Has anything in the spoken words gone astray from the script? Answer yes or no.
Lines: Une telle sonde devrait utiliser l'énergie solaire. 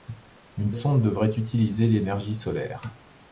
yes